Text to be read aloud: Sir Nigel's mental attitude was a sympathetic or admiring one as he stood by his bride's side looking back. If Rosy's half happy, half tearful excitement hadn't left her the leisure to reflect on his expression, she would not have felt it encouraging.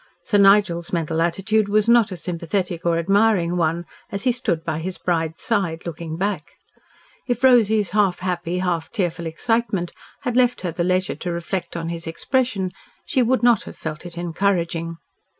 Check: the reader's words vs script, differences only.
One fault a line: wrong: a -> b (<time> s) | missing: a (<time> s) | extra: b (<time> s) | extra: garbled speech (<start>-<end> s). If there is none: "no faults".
extra: not (1.9 s)
wrong: hadn't -> had (10.2 s)